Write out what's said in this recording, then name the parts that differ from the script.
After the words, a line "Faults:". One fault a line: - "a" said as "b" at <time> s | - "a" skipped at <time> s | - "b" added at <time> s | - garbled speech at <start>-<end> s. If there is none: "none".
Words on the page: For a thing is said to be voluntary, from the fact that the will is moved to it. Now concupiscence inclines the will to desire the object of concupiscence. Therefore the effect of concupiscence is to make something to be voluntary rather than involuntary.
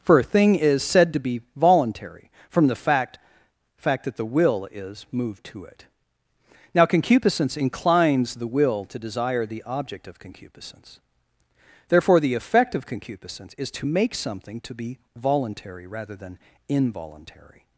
For a thing is said to be voluntary, from the fact fact that the will is moved to it. Now concupiscence inclines the will to desire the object of concupiscence. Therefore the effect of concupiscence is to make something to be voluntary rather than involuntary.
Faults:
- "fact" added at 3.8 s